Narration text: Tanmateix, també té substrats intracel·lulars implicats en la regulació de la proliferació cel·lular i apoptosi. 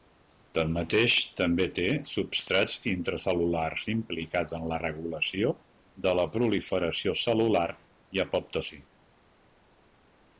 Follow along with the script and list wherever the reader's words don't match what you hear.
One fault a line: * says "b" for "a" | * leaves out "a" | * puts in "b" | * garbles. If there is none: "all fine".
all fine